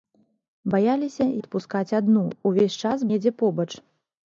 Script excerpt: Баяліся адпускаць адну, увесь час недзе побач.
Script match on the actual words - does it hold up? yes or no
yes